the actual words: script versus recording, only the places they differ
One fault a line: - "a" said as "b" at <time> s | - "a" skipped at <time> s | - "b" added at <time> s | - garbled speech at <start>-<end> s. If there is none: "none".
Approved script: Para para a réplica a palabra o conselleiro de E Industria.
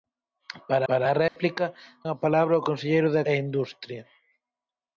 none